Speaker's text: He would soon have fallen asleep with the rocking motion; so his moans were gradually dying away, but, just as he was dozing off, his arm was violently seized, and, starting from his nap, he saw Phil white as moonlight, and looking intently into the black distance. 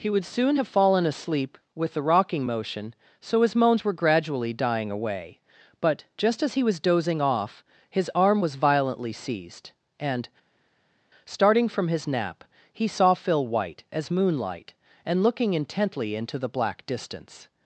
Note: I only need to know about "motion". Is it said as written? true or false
true